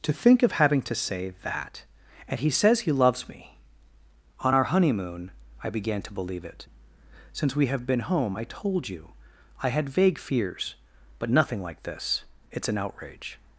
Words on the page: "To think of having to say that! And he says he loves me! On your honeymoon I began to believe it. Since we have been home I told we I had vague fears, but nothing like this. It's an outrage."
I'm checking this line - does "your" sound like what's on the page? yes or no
no